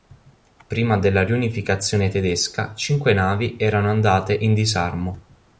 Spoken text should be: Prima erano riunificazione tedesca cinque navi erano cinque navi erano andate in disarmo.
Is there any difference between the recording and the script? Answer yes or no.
yes